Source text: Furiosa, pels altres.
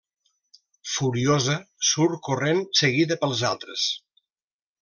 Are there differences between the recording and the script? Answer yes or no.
yes